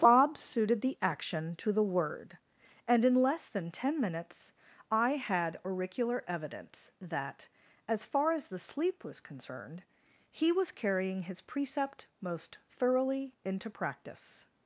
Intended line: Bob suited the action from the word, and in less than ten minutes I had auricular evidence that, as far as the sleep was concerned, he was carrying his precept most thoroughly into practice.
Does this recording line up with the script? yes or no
no